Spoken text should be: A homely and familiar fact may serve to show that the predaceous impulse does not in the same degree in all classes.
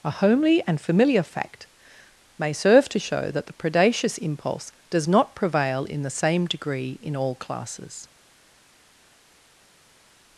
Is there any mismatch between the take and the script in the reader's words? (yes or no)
yes